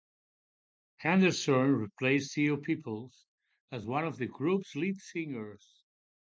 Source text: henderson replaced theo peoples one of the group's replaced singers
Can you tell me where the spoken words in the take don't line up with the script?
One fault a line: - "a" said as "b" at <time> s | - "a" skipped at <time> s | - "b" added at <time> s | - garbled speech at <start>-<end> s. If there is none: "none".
- "as" added at 3.7 s
- "replaced" said as "lead" at 4.7 s